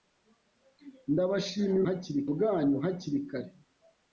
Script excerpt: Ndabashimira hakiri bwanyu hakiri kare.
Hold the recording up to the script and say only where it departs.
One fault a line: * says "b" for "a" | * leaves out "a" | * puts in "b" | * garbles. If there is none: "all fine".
all fine